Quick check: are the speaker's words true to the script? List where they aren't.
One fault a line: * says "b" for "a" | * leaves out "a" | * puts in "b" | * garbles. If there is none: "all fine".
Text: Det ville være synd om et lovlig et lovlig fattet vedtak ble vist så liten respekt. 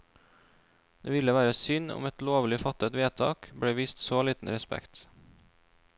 * leaves out "et lovlig"